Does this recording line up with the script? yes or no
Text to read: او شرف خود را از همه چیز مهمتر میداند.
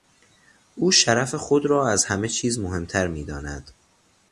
yes